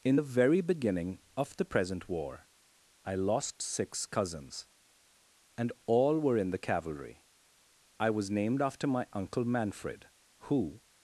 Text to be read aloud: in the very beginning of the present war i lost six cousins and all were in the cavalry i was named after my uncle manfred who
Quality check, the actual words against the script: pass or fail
pass